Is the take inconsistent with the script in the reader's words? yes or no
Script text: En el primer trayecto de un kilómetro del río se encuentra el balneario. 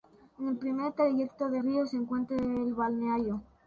yes